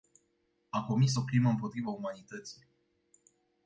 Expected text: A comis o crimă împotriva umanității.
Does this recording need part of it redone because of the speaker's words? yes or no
no